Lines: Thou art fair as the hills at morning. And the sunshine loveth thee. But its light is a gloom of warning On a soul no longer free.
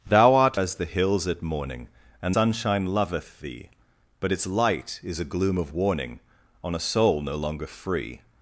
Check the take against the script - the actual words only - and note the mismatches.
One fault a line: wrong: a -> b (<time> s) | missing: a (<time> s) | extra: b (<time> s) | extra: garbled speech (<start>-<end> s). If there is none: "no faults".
missing: fair (0.6 s)
missing: the (2.4 s)